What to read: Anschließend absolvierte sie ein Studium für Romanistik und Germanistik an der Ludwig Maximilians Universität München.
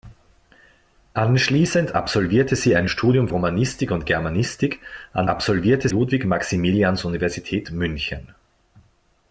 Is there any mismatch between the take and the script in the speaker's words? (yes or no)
yes